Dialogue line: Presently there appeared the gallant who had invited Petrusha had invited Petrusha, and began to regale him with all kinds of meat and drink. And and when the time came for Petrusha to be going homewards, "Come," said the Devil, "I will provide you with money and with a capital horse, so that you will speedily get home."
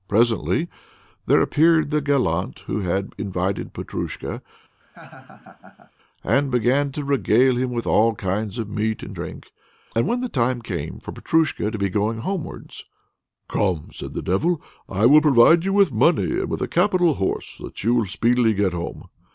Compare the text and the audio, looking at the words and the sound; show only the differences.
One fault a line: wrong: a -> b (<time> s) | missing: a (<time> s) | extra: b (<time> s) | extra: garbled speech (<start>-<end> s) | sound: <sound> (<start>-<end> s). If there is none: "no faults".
missing: had invited Petrusha (4.4 s)
sound: laugh (4.8-5.9 s)
missing: and (10.1 s)